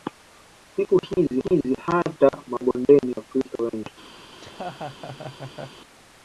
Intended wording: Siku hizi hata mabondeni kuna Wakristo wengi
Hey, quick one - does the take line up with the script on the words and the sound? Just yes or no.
no